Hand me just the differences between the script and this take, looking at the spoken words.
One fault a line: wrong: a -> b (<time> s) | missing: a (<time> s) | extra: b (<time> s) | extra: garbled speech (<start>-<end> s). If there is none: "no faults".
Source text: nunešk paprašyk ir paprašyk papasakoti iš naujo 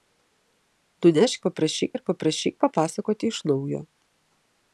no faults